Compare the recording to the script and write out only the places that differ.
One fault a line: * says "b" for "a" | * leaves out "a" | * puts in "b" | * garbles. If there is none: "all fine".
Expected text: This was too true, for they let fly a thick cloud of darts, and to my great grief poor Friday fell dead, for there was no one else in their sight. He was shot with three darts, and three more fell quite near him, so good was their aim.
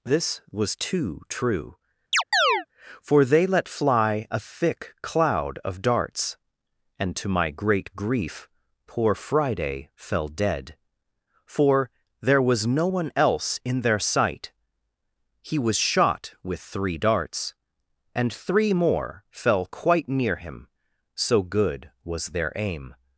all fine